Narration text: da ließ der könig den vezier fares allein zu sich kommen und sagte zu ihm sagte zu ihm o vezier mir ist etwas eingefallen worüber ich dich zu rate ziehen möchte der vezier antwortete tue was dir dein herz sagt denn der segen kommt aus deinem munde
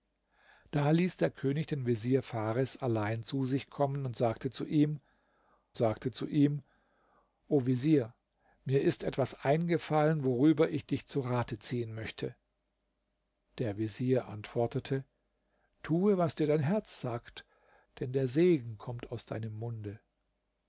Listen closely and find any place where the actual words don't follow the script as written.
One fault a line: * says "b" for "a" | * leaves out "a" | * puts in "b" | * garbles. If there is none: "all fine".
all fine